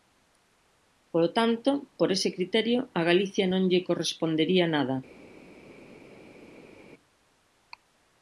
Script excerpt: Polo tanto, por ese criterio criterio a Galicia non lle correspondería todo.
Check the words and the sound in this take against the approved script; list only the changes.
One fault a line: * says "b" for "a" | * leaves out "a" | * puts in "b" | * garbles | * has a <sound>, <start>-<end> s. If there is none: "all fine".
* leaves out "criterio"
* says "nada" for "todo"